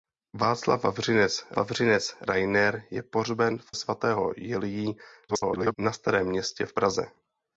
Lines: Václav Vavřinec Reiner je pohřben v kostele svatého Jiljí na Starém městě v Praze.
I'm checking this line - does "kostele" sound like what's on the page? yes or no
no